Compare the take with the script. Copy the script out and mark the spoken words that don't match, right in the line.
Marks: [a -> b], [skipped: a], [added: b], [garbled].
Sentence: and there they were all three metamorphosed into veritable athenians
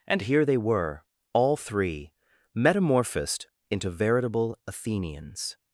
and [there -> here] they were all three metamorphosed into veritable athenians